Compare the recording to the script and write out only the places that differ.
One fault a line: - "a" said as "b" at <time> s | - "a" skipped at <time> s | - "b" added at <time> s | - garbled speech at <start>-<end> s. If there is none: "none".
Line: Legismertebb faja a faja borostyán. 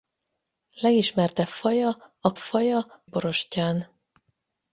none